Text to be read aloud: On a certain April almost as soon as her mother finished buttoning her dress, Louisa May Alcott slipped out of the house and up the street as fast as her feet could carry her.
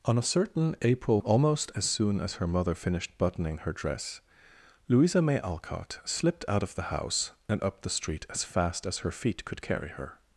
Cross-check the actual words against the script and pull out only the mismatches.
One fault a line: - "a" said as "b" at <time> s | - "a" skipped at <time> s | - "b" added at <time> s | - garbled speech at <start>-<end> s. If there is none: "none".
none